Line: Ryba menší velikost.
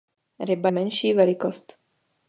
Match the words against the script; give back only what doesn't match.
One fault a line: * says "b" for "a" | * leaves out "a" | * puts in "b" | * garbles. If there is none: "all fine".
all fine